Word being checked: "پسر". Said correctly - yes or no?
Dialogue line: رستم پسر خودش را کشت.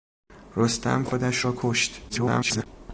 no